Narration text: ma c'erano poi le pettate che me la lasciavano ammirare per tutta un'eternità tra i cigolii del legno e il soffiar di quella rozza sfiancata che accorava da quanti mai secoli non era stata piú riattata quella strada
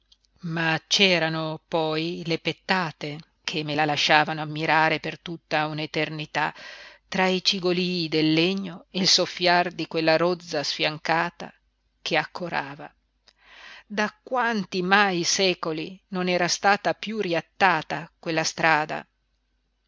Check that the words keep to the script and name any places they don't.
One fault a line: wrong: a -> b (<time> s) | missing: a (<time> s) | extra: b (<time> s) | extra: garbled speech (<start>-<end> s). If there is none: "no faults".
no faults